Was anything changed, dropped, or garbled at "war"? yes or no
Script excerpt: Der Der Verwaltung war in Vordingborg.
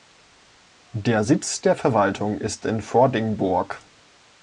yes